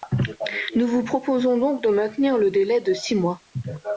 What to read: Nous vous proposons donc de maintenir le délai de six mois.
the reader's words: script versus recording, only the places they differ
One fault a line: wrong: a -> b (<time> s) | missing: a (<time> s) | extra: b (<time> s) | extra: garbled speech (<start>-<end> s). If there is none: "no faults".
no faults